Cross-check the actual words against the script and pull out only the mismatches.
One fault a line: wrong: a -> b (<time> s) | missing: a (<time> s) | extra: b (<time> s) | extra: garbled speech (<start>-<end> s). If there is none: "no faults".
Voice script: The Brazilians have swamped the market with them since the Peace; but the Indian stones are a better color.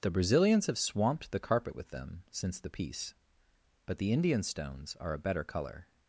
wrong: market -> carpet (1.4 s)